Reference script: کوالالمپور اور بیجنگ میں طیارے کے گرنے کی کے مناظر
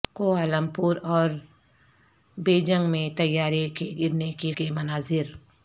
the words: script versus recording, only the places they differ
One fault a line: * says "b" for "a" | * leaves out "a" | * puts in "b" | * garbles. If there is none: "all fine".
all fine